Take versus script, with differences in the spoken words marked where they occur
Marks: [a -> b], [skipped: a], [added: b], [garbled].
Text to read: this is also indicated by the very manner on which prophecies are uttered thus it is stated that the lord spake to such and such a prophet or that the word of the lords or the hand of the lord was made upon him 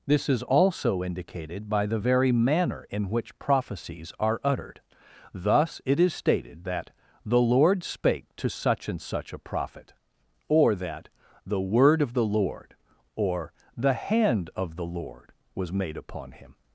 this is also indicated by the very manner [on -> in] which prophecies are uttered thus it is stated that the lord spake to such and such a prophet or that the word of the [lords -> lord] or the hand of the lord was made upon him